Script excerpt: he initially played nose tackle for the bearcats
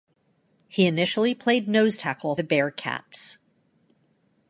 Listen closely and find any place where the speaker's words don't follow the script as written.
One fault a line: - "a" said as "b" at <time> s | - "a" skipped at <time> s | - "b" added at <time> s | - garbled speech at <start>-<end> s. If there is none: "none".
- "for" skipped at 2.4 s